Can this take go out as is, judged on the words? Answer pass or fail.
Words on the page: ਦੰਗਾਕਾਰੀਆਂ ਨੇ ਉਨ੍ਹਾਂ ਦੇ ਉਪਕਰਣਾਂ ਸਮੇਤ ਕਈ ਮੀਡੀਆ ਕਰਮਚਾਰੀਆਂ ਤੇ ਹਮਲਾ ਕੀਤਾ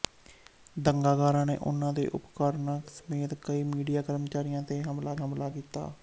fail